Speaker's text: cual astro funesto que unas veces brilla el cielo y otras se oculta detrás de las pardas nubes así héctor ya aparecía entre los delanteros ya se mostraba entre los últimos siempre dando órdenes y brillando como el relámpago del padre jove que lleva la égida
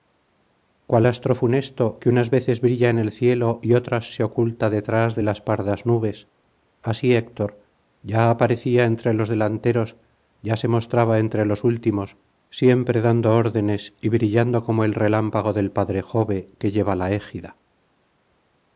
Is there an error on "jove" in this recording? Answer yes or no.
no